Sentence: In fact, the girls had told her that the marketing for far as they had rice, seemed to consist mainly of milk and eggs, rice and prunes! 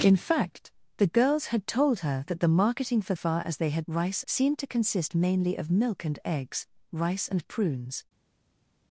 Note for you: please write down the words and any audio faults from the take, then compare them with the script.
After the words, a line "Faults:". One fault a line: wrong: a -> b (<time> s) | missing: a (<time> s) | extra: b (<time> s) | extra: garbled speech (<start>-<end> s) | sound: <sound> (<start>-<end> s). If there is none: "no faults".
In fact, the girls had told her that the marketing for far as they had rice, seemed to consist mainly of milk and eggs, rice and prunes!
Faults:
no faults